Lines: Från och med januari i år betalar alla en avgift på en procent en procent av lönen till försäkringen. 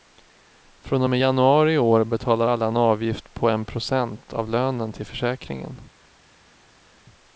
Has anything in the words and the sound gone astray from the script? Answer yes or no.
yes